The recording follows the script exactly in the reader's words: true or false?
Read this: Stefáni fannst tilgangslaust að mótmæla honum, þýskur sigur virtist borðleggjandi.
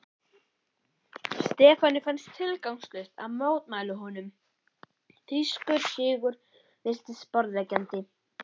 true